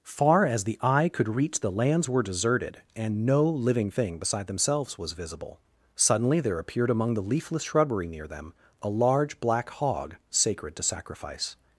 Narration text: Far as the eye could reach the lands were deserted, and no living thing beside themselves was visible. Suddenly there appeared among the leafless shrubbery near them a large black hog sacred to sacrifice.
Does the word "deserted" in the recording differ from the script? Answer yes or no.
no